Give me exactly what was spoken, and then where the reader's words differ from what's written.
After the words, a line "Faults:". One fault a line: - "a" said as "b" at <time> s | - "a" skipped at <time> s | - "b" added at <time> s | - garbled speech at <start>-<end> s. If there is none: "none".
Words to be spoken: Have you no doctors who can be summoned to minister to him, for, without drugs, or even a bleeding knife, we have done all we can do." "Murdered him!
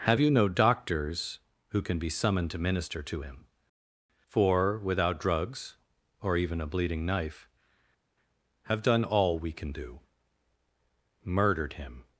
Have you no doctors who can be summoned to minister to him, for, without drugs, or even a bleeding knife, have done all we can do." "Murdered him!
Faults:
- "we" skipped at 7.5 s